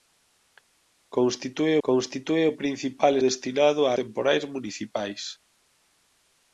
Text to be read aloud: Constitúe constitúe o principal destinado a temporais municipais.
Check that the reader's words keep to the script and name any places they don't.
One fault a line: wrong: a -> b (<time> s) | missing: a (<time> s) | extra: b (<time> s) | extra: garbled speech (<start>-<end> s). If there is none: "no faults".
no faults